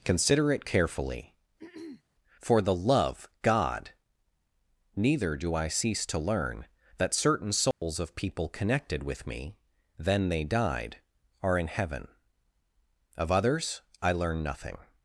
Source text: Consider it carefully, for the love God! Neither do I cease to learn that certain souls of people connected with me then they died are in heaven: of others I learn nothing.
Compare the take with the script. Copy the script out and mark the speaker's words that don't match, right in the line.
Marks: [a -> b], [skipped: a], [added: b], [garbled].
Consider it carefully, for the love God! Neither do I cease to learn that certain souls of people connected with me then they died are in heaven: of others I learn nothing.